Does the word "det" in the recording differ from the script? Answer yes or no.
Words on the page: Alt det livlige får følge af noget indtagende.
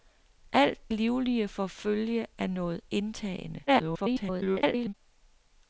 yes